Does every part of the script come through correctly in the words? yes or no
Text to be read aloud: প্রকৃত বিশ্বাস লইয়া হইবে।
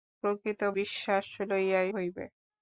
yes